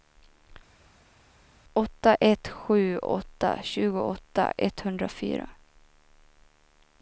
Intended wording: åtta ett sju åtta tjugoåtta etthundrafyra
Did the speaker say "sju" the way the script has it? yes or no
yes